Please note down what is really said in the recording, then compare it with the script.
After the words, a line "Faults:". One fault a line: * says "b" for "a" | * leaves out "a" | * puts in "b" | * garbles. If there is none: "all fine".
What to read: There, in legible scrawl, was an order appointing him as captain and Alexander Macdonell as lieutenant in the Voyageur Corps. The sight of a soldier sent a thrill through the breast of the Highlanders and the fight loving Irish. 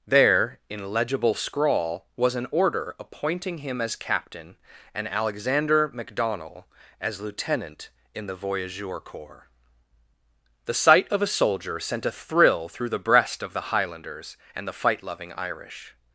There, in legible scrawl, was an order appointing him as captain and Alexander Macdonell as lieutenant in the Voyageur Corps. The sight of a soldier sent a thrill through the breast of the Highlanders and the fight loving Irish.
Faults:
all fine